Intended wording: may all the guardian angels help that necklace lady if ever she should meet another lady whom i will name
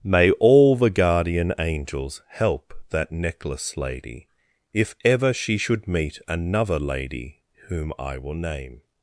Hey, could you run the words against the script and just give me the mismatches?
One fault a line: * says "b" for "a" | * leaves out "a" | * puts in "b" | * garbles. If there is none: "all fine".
all fine